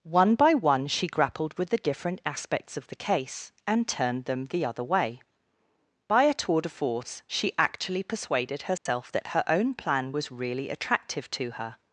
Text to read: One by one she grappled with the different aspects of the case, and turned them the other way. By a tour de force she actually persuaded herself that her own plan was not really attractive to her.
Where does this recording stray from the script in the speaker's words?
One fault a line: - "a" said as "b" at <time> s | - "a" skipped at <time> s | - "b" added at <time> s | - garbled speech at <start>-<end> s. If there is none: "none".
- "not" skipped at 10.3 s